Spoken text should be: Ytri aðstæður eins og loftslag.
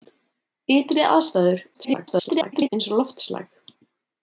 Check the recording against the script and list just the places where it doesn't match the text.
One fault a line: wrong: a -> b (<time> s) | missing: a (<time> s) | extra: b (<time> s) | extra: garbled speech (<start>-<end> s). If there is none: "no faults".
extra: garbled speech (1.7-2.7 s)